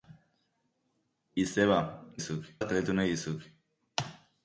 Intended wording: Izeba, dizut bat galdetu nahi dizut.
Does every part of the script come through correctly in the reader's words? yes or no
yes